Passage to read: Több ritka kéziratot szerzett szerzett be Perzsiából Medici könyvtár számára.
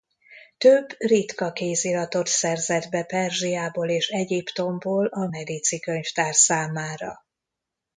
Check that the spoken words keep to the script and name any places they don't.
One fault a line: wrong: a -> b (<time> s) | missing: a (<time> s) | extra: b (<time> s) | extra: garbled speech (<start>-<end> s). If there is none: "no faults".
missing: szerzett (2.9 s)
extra: és Egyiptomból a (3.9 s)